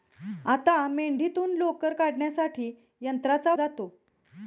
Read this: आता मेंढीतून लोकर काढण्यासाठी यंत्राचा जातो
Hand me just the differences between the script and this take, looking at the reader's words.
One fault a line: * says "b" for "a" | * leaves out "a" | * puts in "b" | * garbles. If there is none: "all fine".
all fine